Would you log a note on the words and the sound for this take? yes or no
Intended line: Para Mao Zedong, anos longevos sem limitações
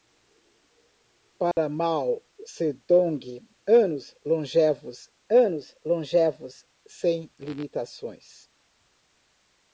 yes